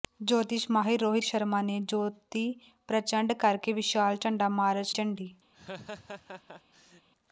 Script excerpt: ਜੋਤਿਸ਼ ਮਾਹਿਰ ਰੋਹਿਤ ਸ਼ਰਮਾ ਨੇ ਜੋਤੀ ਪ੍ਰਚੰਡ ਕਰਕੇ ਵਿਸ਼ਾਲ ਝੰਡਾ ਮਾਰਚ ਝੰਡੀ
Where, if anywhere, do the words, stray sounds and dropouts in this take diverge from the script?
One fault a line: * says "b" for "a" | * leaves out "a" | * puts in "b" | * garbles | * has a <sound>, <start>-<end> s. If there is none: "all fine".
* has a laugh, 5.5-7.1 s